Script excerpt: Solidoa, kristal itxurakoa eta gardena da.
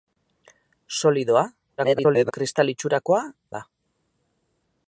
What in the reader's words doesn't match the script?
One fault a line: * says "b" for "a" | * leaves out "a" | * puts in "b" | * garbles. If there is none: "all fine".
* garbles
* leaves out "eta gardena"